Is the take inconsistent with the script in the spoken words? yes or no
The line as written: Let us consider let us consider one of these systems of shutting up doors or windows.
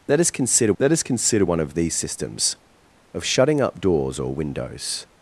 no